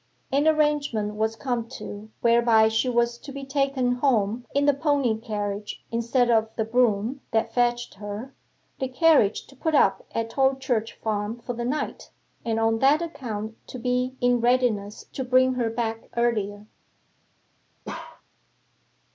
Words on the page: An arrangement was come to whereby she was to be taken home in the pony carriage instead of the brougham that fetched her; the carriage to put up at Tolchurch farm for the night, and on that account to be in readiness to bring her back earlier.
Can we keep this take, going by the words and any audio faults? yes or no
no